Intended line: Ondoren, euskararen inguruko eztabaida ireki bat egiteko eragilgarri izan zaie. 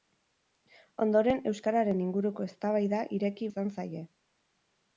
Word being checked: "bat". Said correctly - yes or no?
no